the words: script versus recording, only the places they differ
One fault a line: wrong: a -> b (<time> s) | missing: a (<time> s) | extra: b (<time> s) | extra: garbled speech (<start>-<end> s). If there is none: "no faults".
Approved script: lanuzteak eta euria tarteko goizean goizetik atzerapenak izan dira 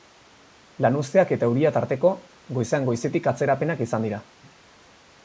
no faults